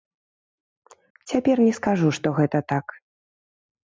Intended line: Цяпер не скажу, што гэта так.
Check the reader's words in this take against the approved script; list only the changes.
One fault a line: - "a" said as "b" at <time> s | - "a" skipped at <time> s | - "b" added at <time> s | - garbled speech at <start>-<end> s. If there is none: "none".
none